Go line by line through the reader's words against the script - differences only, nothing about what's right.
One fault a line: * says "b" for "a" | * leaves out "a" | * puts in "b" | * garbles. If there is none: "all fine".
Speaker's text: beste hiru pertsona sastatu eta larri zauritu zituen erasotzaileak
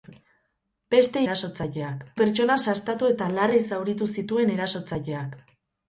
* says "erasotzaileak" for "hiru"